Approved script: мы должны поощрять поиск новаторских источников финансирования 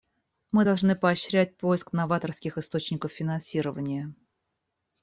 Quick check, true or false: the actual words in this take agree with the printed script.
true